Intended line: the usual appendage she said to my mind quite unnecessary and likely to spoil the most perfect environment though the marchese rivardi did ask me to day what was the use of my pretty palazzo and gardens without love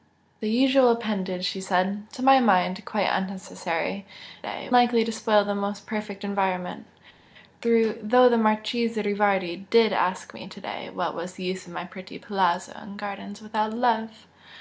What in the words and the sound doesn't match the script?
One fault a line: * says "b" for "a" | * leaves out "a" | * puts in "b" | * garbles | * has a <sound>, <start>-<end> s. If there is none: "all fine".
* says "day" for "and"